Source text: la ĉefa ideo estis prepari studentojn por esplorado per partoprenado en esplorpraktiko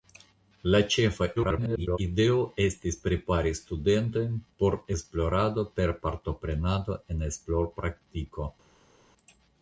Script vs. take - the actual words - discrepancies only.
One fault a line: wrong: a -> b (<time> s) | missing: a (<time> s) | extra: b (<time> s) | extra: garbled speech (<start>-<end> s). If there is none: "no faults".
extra: garbled speech (1.4-2.0 s)